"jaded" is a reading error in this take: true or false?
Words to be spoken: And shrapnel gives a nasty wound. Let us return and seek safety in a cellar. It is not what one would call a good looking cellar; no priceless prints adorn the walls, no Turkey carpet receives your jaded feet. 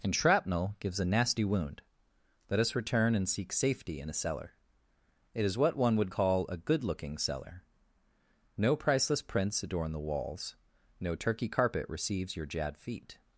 true